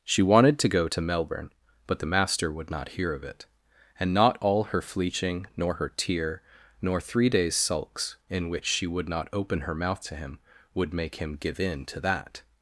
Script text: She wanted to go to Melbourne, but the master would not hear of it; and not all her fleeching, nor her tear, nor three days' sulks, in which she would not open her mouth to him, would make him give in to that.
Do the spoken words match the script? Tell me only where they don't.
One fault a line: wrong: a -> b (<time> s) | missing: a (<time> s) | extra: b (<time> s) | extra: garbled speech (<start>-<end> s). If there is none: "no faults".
no faults